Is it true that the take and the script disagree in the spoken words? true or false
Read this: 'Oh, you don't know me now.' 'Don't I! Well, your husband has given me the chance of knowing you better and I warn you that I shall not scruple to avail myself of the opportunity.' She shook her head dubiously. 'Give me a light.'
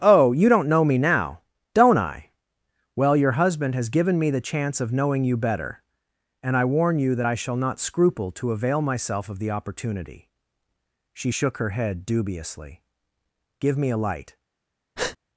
false